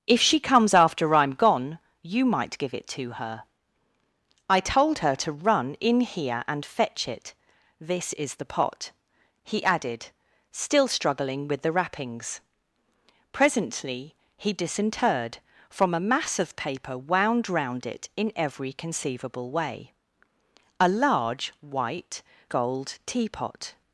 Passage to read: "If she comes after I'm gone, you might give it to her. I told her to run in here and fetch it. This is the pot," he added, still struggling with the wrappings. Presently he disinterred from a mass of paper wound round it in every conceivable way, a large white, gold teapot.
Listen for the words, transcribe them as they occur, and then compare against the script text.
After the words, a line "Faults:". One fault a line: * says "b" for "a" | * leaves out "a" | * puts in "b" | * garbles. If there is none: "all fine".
"If she comes after I'm gone, you might give it to her. I told her to run in here and fetch it. This is the pot," he added, still struggling with the wrappings. Presently he disinterred from a mass of paper wound round it in every conceivable way, a large white, gold teapot.
Faults:
all fine